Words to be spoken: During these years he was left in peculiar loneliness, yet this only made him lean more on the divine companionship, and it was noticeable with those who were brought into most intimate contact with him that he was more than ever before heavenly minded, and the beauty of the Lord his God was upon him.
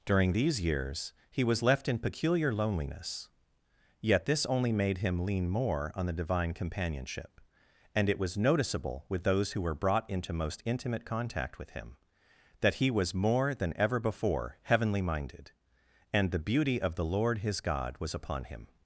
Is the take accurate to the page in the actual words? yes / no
yes